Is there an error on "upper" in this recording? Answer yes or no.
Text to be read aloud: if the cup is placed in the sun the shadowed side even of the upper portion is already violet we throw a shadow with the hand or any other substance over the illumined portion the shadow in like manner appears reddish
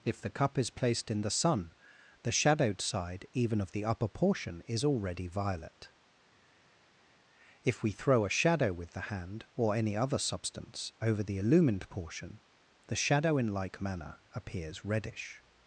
no